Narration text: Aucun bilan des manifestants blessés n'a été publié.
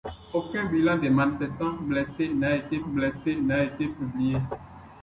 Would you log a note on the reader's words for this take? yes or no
yes